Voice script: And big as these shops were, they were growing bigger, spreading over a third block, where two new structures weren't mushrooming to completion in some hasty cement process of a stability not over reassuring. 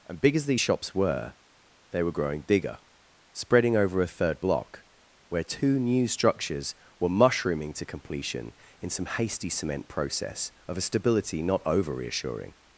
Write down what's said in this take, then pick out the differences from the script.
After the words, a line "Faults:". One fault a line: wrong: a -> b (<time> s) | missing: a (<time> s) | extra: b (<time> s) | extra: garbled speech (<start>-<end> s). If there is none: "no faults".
And big as these shops were, they were growing bigger, spreading over a third block, where two new structures were mushrooming to completion in some hasty cement process of a stability not over reassuring.
Faults:
wrong: weren't -> were (7.0 s)